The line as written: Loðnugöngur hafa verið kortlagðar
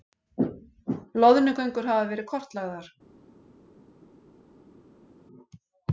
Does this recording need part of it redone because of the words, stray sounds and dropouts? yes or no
no